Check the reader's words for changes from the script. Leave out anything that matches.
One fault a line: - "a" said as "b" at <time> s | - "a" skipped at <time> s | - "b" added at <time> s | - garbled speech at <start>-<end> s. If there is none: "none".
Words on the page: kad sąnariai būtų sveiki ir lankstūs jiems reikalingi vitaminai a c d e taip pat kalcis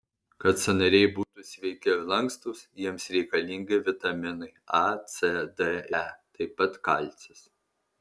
none